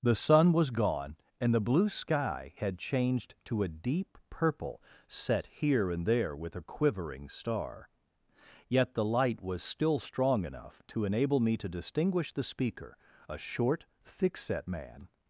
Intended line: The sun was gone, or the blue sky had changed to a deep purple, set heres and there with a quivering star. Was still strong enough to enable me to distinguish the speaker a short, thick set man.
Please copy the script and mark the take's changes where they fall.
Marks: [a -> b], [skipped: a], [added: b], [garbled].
The sun was gone, [or -> and] the blue sky had changed to a deep purple, set [heres -> here] and there with a quivering star. [added: Yet the light] Was still strong enough to enable me to distinguish the speaker a short, thick set man.